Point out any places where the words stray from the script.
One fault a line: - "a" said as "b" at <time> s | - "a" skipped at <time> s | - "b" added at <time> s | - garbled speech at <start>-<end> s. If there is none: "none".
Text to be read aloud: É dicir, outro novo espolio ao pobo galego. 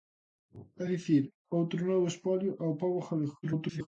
- garbled speech at 3.4-3.9 s